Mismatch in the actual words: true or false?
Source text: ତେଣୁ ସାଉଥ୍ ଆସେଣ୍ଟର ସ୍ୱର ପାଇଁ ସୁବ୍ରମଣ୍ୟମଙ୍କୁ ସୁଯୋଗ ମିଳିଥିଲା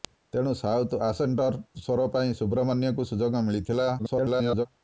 true